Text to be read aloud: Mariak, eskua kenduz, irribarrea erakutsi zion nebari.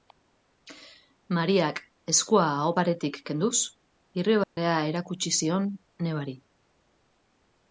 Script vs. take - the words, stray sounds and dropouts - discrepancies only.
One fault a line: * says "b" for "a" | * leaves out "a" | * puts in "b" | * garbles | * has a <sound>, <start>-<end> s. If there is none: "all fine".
* puts in "aho paretik"
* has a dropout, 4.4-4.6 s